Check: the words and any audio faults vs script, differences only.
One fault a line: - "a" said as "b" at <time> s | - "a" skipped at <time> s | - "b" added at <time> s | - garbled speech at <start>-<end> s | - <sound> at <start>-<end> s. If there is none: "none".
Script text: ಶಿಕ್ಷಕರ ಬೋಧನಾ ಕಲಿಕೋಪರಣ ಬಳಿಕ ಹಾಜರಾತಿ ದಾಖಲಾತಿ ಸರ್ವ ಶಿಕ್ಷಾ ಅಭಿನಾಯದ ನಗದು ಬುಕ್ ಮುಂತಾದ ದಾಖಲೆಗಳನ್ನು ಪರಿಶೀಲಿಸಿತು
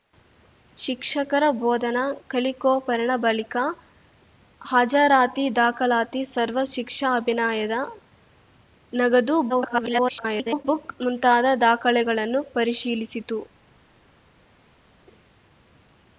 - garbled speech at 9.5-10.7 s